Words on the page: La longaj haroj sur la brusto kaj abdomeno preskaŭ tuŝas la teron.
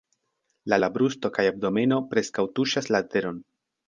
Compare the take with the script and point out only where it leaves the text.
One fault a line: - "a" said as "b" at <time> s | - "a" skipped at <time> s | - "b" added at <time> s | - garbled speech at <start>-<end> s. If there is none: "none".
- "longaj haroj sur" skipped at 0.8 s